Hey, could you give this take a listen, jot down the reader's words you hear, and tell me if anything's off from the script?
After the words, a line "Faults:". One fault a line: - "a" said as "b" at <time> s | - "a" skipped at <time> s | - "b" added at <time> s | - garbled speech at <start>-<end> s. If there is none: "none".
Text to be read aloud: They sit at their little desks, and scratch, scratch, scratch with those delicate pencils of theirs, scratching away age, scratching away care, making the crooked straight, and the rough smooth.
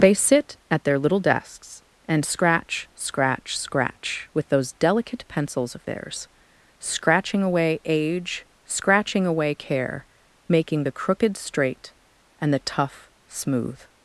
They sit at their little desks, and scratch, scratch, scratch with those delicate pencils of theirs, scratching away age, scratching away care, making the crooked straight, and the tough smooth.
Faults:
- "rough" said as "tough" at 12.6 s